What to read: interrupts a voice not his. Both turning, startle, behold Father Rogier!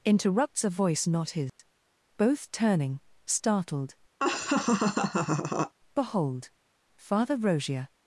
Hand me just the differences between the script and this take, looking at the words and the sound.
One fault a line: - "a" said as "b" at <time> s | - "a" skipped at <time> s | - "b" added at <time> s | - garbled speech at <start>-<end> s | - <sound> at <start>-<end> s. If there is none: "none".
- dropout at 1.5-1.6 s
- "startle" said as "startled" at 3.2 s
- laugh at 4.2-5.7 s